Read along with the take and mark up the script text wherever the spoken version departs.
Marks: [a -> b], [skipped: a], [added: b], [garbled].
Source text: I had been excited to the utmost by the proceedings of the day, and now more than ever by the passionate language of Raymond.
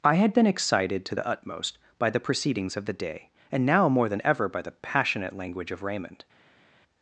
I had been excited to the utmost by the proceedings of the day, and now more than ever by the passionate language of Raymond.